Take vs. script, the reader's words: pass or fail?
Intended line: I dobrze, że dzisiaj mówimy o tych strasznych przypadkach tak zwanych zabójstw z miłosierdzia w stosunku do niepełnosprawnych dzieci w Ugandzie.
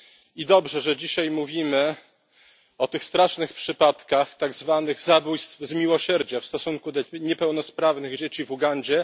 pass